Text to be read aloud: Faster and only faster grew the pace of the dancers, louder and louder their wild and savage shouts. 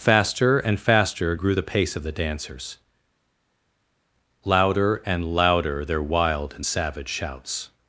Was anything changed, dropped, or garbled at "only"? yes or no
yes